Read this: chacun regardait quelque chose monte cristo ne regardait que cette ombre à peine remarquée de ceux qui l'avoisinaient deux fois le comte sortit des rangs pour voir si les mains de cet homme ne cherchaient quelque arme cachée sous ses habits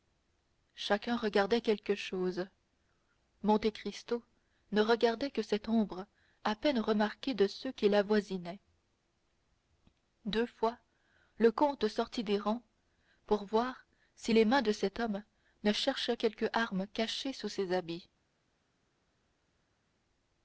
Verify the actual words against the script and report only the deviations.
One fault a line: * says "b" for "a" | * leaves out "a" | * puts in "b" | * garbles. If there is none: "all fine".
all fine